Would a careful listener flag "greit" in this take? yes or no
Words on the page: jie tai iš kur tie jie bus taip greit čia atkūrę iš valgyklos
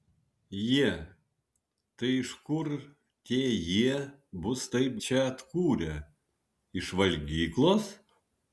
yes